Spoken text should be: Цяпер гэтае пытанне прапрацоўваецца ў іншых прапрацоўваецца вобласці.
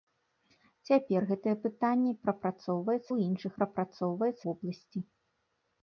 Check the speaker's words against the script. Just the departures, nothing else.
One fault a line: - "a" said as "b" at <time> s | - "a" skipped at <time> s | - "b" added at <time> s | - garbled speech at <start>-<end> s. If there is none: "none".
none